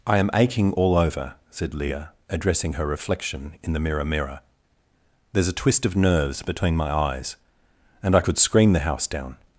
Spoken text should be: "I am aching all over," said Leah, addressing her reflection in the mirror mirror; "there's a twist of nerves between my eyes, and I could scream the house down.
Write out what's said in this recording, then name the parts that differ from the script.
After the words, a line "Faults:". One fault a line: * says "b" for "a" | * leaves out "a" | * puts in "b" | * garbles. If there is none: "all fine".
"I am aching all over," said Leah, addressing her reflection in the mirror mirror; "there's a twist of nerves between my eyes, and I could scream the house down.
Faults:
all fine